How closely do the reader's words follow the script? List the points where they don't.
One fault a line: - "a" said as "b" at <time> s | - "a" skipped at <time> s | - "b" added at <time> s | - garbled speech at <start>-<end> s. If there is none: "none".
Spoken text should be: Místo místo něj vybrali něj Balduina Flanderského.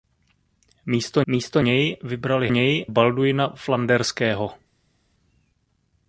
none